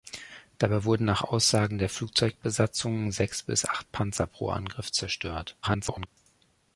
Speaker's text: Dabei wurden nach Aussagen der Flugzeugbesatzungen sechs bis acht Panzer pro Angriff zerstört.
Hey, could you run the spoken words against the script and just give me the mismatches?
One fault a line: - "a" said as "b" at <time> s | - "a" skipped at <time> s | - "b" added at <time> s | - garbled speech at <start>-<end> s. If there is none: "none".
- garbled speech at 5.6-6.1 s